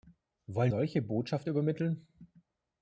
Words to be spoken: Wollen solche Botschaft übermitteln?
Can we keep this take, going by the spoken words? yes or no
yes